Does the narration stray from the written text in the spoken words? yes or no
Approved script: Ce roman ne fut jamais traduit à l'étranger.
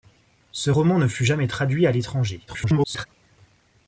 yes